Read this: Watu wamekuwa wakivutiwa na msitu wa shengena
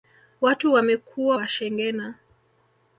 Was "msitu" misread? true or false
true